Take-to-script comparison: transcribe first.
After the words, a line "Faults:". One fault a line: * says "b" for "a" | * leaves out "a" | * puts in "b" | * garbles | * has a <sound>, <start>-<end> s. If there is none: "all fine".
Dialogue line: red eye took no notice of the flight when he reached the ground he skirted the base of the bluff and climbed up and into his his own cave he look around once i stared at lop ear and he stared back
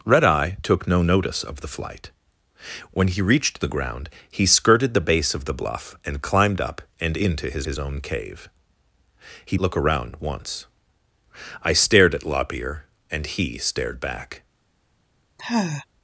red eye took no notice of the flight when he reached the ground he skirted the base of the bluff and climbed up and into his his own cave he look around once i stared at lop ear and he stared back
Faults:
* has a sigh, 15.4-15.9 s